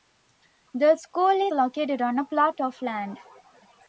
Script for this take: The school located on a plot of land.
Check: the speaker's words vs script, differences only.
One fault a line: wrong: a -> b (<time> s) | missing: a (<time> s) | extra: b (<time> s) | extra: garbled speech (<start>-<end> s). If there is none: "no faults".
no faults